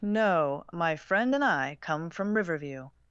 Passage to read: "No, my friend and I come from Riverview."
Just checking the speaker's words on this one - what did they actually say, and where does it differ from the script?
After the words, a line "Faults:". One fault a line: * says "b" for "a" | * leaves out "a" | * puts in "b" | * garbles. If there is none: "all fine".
"No, my friend and I come from Riverview."
Faults:
all fine